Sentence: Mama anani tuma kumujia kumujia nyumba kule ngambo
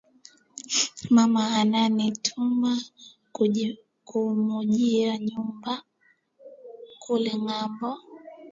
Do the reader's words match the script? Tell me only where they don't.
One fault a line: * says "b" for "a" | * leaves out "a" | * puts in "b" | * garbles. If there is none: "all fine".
* leaves out "kumujia"